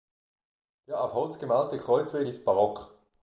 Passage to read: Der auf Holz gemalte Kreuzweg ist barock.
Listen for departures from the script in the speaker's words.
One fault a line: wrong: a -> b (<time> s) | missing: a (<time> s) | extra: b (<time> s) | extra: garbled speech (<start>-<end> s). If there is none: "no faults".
no faults